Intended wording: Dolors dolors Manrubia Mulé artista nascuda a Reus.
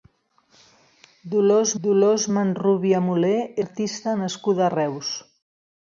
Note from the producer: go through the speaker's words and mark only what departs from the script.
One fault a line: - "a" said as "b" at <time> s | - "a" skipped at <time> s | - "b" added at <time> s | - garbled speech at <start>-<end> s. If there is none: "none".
none